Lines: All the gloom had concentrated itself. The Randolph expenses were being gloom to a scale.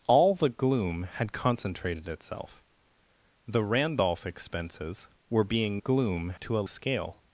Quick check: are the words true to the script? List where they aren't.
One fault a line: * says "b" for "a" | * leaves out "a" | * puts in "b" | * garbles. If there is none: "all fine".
all fine